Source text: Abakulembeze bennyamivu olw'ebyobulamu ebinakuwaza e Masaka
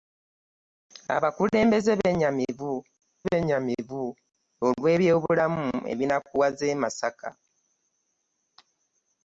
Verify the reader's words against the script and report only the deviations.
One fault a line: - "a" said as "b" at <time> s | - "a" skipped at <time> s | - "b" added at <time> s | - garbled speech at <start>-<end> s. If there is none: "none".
- "bennyamivu" added at 3.3 s